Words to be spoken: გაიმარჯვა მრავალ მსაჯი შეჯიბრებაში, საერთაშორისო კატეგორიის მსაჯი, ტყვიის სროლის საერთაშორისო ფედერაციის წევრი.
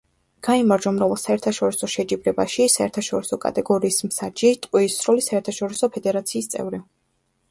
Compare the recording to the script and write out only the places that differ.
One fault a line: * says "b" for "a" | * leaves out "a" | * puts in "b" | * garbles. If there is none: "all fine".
* says "საერთაშორისო" for "მსაჯი"